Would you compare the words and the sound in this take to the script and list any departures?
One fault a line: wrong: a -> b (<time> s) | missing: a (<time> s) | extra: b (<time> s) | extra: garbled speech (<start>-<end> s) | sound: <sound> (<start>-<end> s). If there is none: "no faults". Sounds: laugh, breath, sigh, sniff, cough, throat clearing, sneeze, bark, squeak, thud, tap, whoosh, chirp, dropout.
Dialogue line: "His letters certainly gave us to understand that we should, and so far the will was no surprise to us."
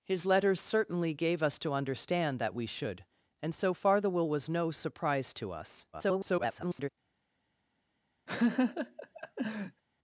extra: garbled speech (5.9-6.9 s)
sound: laugh (8.3-9.8 s)